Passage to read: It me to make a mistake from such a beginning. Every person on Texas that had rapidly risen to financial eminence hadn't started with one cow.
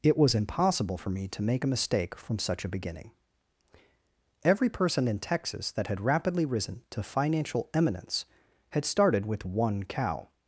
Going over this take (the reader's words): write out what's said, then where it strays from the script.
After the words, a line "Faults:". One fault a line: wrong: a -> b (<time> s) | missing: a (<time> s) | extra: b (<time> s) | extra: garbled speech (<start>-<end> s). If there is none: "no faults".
It was impossible for me to make a mistake from such a beginning. Every person in Texas that had rapidly risen to financial eminence had started with one cow.
Faults:
extra: was impossible for (0.2 s)
wrong: on -> in (5.1 s)
wrong: hadn't -> had (8.7 s)